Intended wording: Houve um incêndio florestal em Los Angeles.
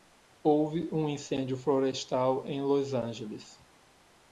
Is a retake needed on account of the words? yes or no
no